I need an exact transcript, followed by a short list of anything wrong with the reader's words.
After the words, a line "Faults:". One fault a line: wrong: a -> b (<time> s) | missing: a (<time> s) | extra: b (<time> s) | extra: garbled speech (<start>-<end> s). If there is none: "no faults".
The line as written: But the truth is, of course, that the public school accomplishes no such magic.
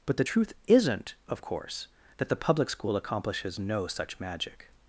But the truth isn't, of course, that the public school accomplishes no such magic.
Faults:
wrong: is -> isn't (0.7 s)